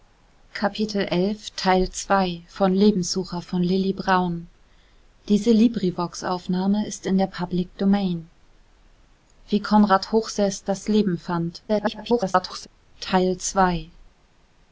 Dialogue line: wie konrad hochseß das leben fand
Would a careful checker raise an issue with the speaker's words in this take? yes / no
yes